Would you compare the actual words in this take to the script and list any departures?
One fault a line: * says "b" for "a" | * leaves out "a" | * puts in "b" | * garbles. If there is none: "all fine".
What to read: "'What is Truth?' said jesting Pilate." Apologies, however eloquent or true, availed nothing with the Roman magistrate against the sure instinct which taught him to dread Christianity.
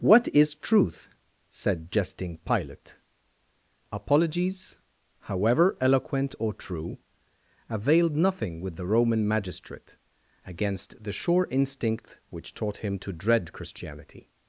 all fine